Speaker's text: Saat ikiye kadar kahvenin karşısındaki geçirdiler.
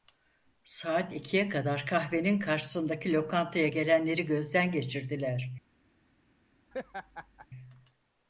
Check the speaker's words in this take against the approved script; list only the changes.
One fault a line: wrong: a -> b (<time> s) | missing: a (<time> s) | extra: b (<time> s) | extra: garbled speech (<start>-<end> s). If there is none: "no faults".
extra: lokantaya gelenleri gözden (3.1 s)